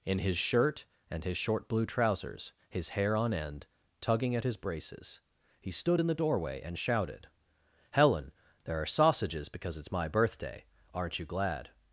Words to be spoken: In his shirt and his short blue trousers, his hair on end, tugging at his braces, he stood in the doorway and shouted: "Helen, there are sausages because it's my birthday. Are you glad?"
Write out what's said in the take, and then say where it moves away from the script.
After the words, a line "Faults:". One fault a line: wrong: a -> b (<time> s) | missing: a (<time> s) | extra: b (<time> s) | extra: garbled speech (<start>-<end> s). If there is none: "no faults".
In his shirt and his short blue trousers, his hair on end, tugging at his braces, he stood in the doorway and shouted: "Helen, there are sausages because it's my birthday. Aren't you glad?"
Faults:
wrong: Are -> Aren't (10.9 s)